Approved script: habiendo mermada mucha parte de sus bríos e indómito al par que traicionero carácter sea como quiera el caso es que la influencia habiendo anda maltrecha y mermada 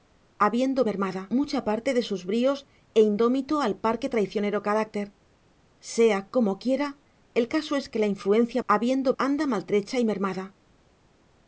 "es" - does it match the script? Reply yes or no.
yes